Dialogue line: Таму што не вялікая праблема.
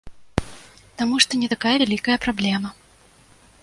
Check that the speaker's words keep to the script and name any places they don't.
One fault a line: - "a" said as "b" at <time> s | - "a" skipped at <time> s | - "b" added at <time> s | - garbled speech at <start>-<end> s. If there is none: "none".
- "такая" added at 1.5 s